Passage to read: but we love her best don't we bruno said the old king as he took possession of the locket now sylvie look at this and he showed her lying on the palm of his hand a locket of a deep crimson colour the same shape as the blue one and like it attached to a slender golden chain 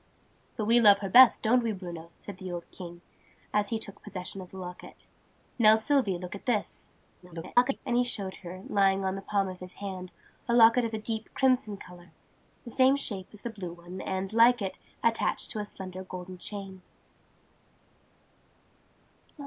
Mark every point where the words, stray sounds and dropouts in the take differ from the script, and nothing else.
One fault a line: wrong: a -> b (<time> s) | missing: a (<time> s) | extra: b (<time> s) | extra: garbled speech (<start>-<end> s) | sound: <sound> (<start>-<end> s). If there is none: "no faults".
extra: garbled speech (7.2-7.8 s)